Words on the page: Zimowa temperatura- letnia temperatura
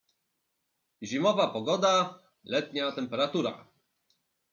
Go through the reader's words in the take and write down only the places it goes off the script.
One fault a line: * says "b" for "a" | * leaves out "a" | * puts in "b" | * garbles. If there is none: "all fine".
* says "pogoda" for "temperatura"